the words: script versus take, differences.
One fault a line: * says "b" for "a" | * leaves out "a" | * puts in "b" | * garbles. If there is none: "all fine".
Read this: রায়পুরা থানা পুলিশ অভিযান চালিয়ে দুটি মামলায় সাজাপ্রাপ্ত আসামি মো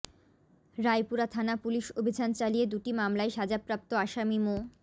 all fine